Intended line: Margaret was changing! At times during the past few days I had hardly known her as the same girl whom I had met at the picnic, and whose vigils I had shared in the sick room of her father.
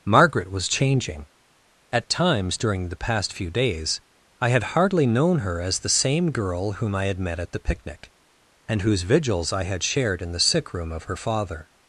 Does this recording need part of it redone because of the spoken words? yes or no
no